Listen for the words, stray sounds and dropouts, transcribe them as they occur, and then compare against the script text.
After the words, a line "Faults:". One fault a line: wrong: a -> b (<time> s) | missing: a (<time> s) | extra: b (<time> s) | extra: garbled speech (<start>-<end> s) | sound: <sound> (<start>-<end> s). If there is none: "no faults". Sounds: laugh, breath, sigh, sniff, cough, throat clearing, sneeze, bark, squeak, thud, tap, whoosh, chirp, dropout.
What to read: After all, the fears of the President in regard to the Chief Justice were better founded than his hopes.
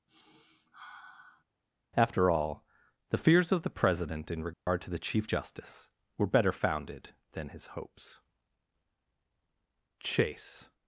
After all, the fears of the President in regard to the Chief Justice were better founded than his hopes. Chase
Faults:
sound: sniff (0.1-1.4 s)
sound: dropout (4.5-4.7 s)
extra: Chase (10.0 s)